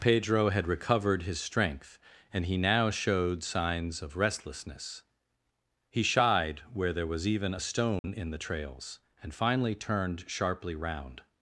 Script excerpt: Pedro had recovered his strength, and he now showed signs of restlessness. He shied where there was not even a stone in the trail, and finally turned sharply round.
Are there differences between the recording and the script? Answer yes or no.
yes